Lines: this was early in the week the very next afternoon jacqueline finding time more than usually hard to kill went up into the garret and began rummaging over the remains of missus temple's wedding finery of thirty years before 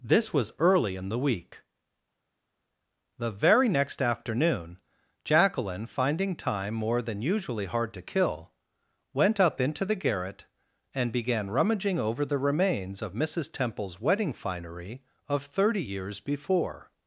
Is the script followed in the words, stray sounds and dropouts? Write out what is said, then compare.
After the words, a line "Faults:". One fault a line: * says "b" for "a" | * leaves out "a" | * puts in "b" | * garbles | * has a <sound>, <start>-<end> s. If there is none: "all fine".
this was early in the week the very next afternoon jacqueline finding time more than usually hard to kill went up into the garret and began rummaging over the remains of missus temple's wedding finery of thirty years before
Faults:
all fine